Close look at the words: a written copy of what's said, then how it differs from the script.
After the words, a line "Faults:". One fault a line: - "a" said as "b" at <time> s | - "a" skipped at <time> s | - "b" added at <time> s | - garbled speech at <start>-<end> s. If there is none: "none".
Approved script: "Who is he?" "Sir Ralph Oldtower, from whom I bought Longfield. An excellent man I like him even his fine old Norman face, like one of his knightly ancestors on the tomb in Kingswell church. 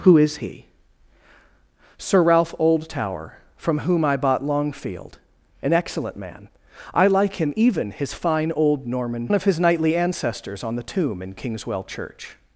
"Who is he?" "Sir Ralph Oldtower, from whom I bought Longfield. An excellent man I like him even his fine old Norman of his knightly ancestors on the tomb in Kingswell church.
Faults:
- "face like one" skipped at 9.3 s